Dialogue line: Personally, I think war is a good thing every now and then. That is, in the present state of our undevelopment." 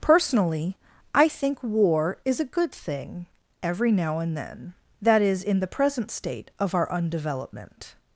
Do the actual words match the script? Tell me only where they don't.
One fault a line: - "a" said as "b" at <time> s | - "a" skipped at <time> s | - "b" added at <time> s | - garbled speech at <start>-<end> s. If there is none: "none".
none